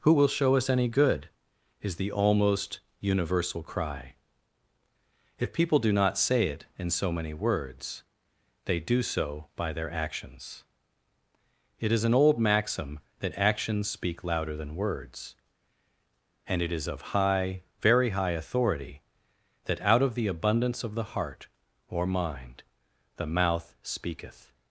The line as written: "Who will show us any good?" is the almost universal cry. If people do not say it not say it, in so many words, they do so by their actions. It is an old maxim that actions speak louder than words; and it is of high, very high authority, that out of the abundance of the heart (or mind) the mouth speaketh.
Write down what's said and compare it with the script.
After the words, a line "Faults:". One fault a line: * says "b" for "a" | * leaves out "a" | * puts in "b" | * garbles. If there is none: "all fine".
"Who will show us any good?" is the almost universal cry. If people do not say it, in so many words, they do so by their actions. It is an old maxim that actions speak louder than words; and it is of high, very high authority, that out of the abundance of the heart (or mind) the mouth speaketh.
Faults:
* leaves out "not say it"